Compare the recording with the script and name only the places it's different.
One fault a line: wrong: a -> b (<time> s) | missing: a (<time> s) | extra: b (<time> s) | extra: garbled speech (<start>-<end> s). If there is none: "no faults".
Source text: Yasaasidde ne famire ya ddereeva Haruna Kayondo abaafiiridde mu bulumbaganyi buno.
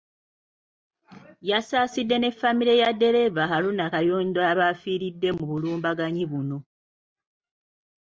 no faults